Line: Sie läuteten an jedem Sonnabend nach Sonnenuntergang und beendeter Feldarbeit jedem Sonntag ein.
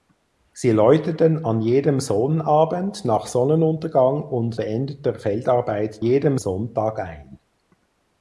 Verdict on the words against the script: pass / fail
pass